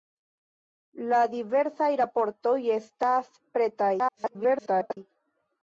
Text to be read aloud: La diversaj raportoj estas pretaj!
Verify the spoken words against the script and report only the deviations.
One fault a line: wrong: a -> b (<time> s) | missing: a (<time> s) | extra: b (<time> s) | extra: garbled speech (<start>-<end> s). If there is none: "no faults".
extra: garbled speech (4.0-5.0 s)